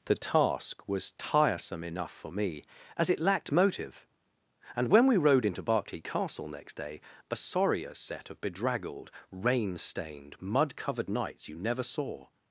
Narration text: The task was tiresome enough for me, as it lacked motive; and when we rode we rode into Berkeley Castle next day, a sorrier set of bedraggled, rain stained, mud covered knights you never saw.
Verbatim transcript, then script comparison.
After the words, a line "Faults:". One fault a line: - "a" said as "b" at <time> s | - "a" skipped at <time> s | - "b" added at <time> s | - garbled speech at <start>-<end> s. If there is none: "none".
The task was tiresome enough for me, as it lacked motive; and when we rode into Berkeley Castle next day, a sorrier set of bedraggled, rain stained, mud covered knights you never saw.
Faults:
- "we rode" skipped at 5.5 s